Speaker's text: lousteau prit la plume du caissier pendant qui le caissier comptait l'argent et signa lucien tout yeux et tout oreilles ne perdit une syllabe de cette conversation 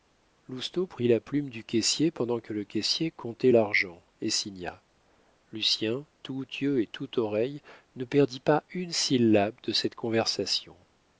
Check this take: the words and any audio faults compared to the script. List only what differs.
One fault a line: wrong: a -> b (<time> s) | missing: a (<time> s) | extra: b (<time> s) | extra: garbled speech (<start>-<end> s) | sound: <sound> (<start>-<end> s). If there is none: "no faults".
wrong: qui -> que (2.4 s)
extra: pas (8.4 s)